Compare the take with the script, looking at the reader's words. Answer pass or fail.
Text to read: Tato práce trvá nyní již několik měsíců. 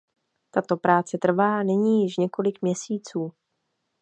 pass